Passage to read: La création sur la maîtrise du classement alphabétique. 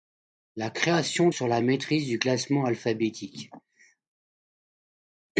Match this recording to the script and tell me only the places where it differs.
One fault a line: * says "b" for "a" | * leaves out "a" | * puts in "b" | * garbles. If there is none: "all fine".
all fine